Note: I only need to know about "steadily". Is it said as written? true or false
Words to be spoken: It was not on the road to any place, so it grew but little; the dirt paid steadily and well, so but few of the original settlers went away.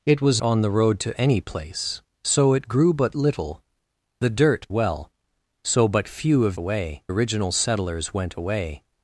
false